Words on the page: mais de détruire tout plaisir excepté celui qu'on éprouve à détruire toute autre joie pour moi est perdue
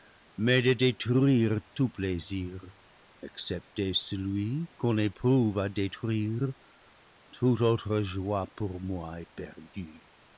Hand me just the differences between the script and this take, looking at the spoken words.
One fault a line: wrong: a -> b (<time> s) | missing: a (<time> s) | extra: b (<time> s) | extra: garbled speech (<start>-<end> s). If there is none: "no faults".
no faults